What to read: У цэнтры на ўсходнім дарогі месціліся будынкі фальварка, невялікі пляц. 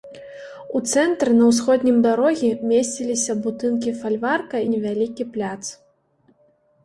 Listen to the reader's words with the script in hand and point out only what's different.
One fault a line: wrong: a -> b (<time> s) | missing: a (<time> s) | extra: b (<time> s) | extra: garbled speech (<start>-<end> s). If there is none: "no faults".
no faults